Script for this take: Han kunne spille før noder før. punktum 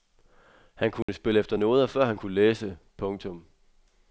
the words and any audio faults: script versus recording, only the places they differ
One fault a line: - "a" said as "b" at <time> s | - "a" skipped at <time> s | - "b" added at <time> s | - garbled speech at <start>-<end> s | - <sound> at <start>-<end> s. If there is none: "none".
- dropout at 1.0-1.1 s
- "før" said as "efter" at 1.4 s
- "han kunne læse" added at 2.0 s